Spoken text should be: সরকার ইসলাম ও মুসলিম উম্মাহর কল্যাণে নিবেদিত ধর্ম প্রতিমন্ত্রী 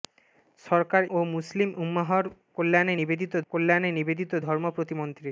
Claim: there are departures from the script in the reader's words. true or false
true